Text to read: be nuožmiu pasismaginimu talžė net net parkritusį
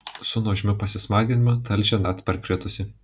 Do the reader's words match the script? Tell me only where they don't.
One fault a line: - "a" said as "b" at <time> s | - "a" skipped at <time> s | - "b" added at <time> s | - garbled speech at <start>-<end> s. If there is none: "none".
- "be" said as "su" at 0.3 s
- "net" skipped at 2.3 s